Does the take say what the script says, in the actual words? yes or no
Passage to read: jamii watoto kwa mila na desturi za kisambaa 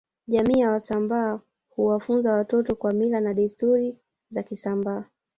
no